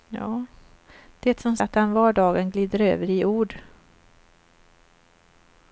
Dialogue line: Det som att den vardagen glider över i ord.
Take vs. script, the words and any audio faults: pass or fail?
pass